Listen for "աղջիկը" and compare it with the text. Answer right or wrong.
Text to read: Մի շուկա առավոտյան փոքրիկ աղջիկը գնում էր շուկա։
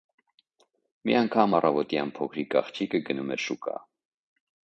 right